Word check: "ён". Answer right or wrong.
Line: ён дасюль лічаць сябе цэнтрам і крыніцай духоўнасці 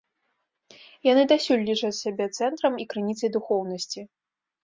wrong